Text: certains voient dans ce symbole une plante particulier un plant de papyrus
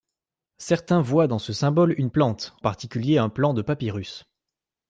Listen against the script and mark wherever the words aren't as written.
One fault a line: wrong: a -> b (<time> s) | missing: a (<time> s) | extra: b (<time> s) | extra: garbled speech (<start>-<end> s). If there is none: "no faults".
no faults